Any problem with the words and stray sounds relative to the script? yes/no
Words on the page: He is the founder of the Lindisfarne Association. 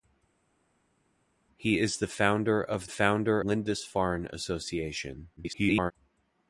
yes